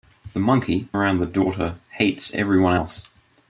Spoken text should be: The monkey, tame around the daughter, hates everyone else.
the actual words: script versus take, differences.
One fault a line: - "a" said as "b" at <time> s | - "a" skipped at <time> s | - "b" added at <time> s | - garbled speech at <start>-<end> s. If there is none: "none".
- "tame" skipped at 0.9 s